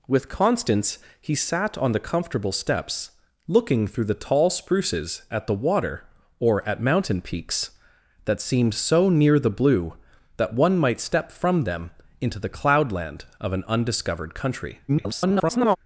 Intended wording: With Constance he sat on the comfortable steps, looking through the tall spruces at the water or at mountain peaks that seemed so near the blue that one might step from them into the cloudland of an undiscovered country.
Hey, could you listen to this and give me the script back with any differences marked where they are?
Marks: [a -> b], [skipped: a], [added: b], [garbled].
With Constance he sat on the comfortable steps, looking through the tall spruces at the water or at mountain peaks that seemed so near the blue that one might step from them into the cloudland of an undiscovered country. [garbled]